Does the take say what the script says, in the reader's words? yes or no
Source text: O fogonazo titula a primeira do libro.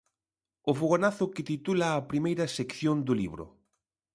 no